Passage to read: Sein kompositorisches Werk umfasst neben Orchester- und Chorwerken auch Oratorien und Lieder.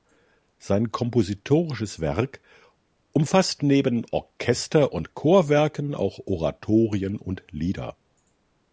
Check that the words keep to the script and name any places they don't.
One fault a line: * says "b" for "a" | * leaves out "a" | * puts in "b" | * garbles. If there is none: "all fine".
all fine